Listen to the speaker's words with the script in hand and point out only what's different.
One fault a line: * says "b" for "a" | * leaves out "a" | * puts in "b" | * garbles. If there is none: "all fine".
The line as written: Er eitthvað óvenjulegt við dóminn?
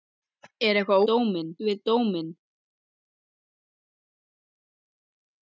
* says "dóminn" for "óvenjulegt"